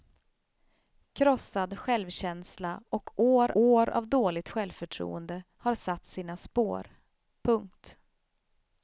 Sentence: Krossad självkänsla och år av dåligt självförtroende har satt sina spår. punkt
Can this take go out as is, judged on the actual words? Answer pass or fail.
fail